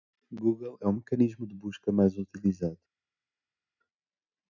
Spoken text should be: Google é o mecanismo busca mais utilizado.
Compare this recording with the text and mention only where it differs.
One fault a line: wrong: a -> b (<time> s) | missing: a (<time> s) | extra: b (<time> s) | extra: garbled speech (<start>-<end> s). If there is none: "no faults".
extra: de (1.4 s)